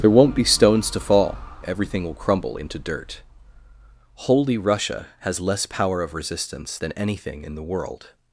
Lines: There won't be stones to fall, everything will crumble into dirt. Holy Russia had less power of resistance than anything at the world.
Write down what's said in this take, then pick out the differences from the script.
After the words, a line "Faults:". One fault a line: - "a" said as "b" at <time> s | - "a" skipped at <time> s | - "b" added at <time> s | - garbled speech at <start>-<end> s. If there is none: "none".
There won't be stones to fall, everything will crumble into dirt. Holy Russia has less power of resistance than anything in the world.
Faults:
- "had" said as "has" at 5.2 s
- "at" said as "in" at 7.4 s